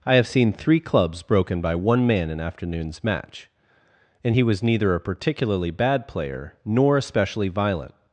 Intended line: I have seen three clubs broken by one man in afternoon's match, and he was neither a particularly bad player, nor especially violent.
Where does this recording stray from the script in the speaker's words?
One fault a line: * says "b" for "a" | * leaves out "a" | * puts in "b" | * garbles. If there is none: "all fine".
all fine